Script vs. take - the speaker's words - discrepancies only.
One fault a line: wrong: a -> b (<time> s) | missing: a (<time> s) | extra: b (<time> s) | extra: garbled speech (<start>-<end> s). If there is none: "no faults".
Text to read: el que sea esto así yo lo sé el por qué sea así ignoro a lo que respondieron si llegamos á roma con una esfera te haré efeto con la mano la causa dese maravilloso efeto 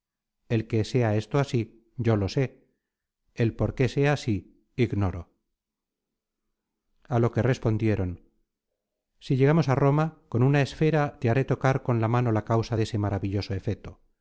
wrong: efeto -> tocar (11.4 s)